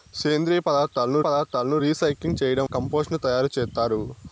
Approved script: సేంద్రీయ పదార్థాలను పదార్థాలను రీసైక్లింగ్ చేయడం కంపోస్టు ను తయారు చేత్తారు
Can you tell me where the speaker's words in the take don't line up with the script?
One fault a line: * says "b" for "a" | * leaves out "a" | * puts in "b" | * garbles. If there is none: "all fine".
all fine